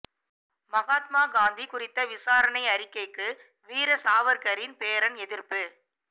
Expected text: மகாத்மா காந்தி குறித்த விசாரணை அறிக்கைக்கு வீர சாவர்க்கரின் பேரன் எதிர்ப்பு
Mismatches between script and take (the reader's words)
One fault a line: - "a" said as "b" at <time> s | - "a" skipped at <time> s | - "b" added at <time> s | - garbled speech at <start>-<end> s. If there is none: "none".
none